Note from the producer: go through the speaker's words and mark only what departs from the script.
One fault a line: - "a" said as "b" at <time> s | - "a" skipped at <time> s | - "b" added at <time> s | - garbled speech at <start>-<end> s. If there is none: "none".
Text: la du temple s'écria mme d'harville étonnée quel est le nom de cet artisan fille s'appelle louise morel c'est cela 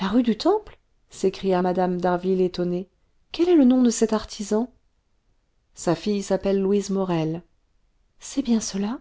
- "rue" added at 0.1 s
- "sa" added at 5.7 s
- "bien" added at 8.4 s